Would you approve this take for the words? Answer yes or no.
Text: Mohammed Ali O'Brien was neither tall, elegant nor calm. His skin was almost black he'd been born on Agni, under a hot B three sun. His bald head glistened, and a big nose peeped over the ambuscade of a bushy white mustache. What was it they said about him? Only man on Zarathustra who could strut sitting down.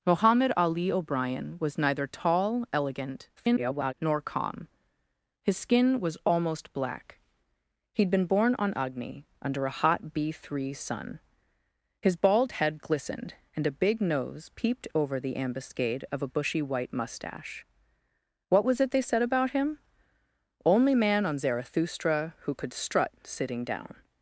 no